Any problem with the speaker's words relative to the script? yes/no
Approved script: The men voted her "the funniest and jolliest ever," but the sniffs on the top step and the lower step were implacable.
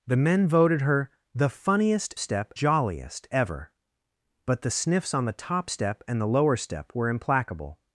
yes